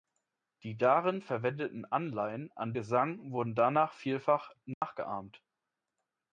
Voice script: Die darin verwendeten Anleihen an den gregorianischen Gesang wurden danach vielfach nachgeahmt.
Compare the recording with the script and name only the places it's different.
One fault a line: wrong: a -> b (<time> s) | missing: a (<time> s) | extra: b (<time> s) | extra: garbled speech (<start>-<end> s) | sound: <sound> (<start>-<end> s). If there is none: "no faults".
missing: den gregorianischen (2.7 s)
sound: dropout (4.7-4.8 s)